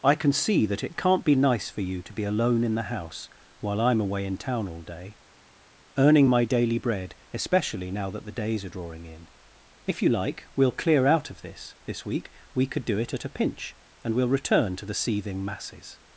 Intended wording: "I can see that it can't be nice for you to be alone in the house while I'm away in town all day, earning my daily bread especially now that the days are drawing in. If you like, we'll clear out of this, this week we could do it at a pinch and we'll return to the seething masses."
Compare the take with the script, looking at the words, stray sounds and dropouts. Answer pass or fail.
pass